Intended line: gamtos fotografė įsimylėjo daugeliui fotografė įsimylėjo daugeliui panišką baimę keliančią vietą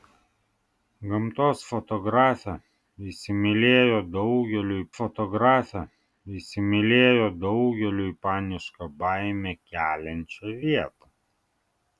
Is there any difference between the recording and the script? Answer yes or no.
no